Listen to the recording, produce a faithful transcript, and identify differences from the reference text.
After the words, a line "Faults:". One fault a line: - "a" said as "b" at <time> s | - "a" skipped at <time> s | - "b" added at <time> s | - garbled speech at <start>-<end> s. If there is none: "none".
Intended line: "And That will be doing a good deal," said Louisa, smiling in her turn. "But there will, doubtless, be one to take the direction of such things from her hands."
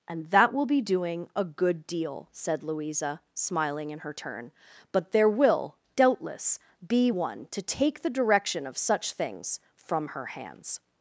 "And That will be doing a good deal," said Louisa, smiling in her turn. "But there will, doubtless, be one to take the direction of such things from her hands."
Faults:
none